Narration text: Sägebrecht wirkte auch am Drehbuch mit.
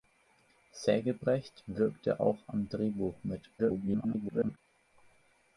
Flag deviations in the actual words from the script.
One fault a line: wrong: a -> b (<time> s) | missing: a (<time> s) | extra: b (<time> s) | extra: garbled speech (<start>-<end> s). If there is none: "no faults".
extra: garbled speech (3.6-4.6 s)